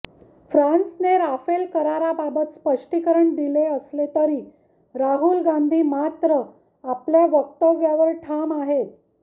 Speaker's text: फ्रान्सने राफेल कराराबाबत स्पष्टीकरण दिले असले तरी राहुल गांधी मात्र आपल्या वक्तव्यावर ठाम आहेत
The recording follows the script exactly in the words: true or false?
true